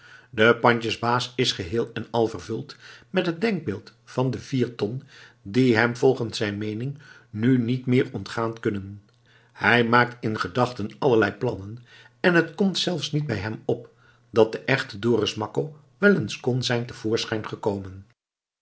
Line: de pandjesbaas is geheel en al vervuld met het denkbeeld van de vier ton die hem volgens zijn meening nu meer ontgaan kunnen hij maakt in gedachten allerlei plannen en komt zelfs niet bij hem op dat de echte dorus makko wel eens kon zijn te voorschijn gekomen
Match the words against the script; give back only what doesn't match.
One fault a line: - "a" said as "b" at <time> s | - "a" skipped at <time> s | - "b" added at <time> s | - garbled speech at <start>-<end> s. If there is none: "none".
- "niet" added at 7.6 s
- "het" added at 12.3 s